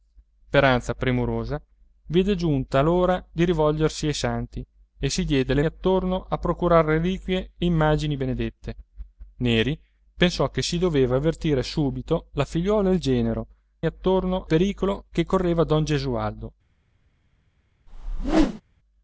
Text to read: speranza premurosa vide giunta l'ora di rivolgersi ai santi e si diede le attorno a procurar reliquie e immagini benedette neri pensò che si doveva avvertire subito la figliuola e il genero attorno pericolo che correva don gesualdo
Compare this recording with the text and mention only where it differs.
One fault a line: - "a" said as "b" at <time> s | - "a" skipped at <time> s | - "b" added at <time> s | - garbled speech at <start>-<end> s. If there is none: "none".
none